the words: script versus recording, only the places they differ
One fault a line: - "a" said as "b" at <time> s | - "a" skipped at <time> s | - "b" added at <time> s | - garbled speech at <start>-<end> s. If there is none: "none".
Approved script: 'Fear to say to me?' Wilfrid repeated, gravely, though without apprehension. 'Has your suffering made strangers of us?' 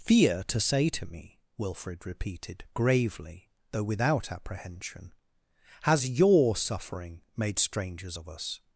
none